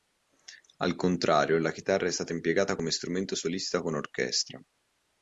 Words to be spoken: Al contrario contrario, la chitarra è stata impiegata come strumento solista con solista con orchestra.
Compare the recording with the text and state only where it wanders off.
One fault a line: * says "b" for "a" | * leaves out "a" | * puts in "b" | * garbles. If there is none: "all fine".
* leaves out "contrario"
* leaves out "solista con"